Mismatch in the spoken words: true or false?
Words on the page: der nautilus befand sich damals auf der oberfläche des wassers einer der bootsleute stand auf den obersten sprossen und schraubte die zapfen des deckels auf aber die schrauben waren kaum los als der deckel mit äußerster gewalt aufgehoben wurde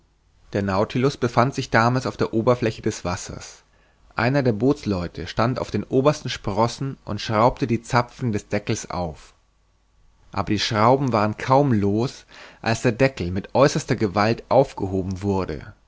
false